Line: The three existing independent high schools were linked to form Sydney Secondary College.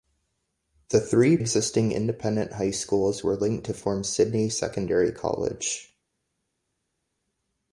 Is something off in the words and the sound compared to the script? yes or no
no